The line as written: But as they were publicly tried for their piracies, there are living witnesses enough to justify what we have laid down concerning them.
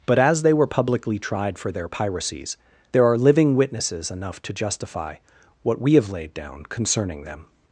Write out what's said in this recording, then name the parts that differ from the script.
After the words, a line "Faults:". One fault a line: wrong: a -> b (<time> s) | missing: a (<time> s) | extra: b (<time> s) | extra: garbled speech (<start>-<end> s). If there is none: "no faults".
But as they were publicly tried for their piracies, there are living witnesses enough to justify what we have laid down concerning them.
Faults:
no faults